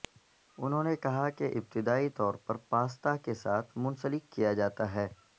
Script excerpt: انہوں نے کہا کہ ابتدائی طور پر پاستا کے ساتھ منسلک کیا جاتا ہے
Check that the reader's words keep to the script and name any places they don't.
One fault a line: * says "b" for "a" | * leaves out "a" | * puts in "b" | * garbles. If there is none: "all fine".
all fine